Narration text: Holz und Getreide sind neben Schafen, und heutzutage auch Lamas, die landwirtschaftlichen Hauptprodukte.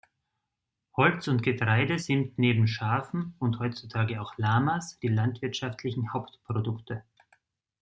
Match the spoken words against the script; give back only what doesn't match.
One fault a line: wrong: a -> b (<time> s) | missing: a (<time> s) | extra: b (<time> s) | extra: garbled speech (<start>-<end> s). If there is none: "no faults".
no faults